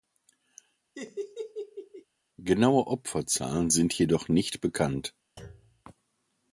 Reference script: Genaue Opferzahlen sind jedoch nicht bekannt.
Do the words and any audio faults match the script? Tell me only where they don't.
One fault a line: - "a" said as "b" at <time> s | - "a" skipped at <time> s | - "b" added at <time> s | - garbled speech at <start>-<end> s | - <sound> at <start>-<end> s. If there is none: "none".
- laugh at 0.9-2.0 s
- thud at 5.4-5.8 s